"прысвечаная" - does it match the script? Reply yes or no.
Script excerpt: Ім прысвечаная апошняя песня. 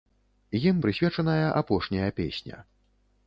yes